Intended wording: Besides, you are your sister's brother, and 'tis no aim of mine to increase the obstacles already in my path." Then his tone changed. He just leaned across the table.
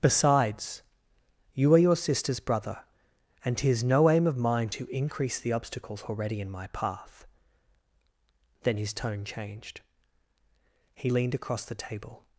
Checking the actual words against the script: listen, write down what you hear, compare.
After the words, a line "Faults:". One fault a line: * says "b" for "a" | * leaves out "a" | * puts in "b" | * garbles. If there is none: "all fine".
Besides, you are your sister's brother, and 'tis no aim of mine to increase the obstacles already in my path." Then his tone changed. He leaned across the table.
Faults:
* leaves out "just"